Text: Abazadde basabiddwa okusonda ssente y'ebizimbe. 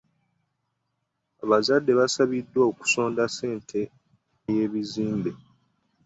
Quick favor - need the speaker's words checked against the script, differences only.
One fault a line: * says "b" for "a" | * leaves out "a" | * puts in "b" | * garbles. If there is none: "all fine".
all fine